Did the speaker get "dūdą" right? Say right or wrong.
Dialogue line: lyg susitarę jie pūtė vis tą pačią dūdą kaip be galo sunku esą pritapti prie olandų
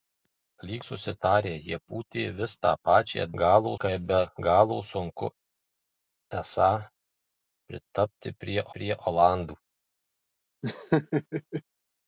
wrong